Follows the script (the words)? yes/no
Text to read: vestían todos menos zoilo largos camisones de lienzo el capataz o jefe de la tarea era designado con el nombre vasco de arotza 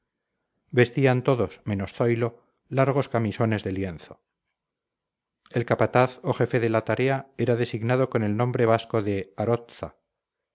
yes